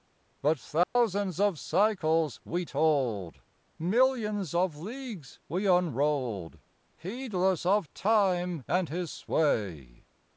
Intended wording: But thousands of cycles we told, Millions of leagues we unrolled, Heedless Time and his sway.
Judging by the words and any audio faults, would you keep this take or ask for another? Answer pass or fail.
fail